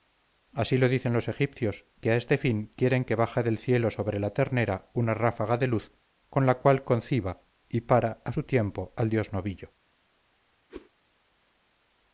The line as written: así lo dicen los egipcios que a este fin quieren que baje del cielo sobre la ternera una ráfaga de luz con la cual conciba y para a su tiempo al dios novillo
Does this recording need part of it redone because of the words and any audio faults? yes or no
yes